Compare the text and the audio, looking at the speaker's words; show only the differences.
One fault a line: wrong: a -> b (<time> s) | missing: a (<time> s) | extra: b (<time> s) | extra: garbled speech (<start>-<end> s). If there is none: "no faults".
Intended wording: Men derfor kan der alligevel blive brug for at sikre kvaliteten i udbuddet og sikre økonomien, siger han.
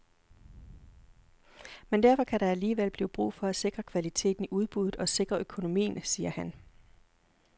no faults